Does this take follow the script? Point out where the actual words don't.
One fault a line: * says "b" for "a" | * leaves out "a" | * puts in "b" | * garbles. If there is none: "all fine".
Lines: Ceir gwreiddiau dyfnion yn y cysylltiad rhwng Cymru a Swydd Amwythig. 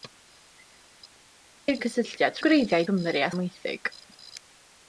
* leaves out "gwreiddiau dyfnion yn"
* says "gwreiddiau" for "rhwng"
* leaves out "Swydd"